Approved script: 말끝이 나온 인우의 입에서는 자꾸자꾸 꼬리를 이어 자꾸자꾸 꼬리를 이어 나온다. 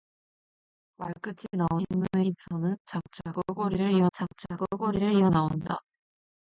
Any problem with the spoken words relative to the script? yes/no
no